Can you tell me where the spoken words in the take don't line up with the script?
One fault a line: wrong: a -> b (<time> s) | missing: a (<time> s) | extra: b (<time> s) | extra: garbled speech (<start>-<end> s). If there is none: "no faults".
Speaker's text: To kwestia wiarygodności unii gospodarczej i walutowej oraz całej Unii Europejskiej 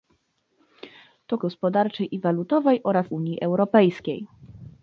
missing: kwestia wiarygodności unii (1.4 s)
missing: całej (3.1 s)